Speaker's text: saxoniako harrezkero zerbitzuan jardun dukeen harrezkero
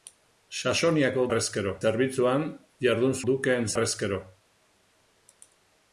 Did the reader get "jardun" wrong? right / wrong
right